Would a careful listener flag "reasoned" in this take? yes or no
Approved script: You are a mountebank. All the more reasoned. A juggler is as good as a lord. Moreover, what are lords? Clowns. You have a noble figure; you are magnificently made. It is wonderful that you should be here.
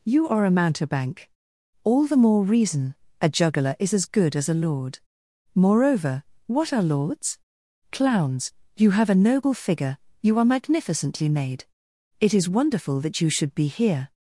yes